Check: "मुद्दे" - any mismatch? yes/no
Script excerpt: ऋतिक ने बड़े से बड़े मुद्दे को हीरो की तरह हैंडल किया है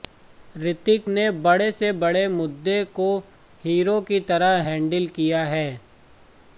no